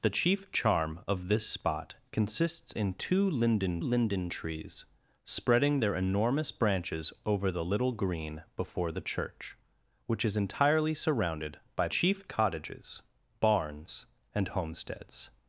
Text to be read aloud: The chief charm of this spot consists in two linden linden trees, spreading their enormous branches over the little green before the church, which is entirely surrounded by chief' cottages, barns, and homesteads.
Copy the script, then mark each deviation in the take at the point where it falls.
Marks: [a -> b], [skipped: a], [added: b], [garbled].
The chief charm of this spot consists in two linden linden trees, spreading their enormous branches over the little green before the church, which is entirely surrounded by chief' cottages, barns, and homesteads.